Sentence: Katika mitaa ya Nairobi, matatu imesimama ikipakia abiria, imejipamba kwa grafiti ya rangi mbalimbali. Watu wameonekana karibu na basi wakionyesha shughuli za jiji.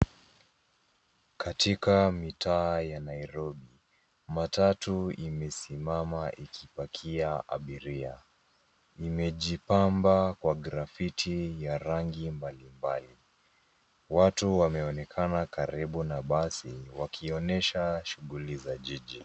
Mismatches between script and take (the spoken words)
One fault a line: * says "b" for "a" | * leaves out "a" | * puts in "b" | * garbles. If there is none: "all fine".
all fine